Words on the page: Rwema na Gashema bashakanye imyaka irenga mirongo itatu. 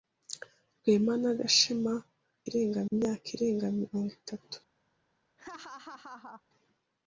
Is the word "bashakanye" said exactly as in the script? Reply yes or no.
no